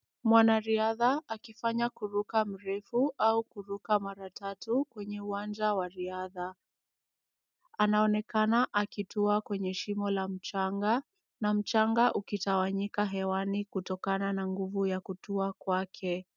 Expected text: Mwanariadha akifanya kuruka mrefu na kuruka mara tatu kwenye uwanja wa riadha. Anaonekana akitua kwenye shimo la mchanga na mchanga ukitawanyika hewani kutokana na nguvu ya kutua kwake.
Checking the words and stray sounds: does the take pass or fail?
fail